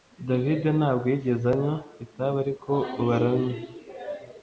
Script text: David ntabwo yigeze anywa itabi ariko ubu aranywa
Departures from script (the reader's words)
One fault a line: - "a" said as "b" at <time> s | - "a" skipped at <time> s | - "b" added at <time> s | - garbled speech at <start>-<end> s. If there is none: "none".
none